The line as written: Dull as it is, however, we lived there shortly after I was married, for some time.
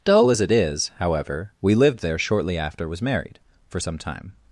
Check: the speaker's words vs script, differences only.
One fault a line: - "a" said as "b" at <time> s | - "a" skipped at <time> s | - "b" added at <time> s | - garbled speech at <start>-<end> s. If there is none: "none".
- "I" skipped at 2.9 s